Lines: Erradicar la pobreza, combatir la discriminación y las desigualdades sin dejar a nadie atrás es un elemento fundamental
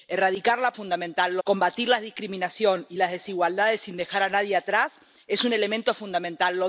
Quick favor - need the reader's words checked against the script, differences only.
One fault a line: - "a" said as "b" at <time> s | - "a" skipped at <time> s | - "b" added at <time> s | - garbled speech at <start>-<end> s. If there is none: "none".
- "pobreza" said as "fundamental" at 0.7 s